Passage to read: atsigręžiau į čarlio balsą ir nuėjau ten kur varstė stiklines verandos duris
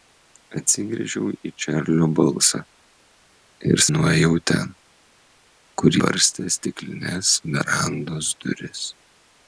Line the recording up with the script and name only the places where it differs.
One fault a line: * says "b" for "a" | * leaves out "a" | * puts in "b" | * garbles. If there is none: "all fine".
all fine